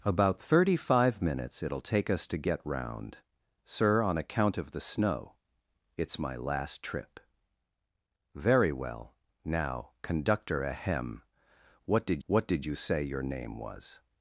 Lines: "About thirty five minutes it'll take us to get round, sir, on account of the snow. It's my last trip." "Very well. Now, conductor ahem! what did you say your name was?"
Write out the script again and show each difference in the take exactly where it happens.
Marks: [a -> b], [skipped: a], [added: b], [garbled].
"About thirty five minutes it'll take us to get round, sir, on account of the snow. It's my last trip." "Very well. Now, conductor ahem! what did [added: what did] you say your name was?"